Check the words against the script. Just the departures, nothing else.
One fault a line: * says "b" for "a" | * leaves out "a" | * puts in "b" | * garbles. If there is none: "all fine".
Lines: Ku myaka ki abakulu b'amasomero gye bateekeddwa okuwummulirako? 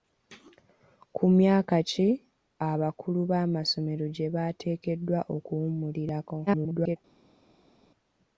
* garbles